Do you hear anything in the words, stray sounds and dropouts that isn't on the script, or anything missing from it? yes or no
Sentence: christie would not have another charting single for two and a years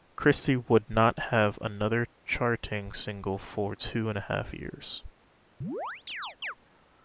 yes